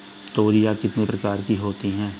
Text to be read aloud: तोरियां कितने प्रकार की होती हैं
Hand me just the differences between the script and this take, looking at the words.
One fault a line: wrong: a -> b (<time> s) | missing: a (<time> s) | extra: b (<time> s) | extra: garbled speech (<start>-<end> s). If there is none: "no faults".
no faults